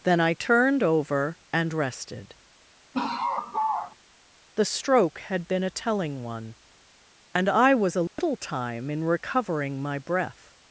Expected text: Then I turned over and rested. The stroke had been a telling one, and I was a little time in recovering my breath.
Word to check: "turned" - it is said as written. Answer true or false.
true